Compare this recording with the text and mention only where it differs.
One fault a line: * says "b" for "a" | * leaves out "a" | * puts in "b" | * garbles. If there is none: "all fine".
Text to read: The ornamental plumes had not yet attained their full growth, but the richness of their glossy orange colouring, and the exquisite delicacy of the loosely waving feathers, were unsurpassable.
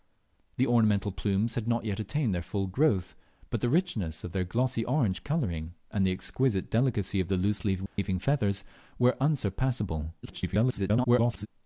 * garbles